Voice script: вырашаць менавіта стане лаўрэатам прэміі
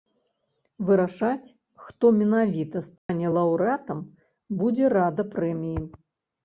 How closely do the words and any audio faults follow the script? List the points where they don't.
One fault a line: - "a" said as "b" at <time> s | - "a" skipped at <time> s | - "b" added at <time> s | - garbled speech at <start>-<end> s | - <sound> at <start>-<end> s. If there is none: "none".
- "хто" added at 1.9 s
- dropout at 3.0-3.1 s
- "будзе рада" added at 4.7 s